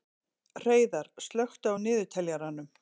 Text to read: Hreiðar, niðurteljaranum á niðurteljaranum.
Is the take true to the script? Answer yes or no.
no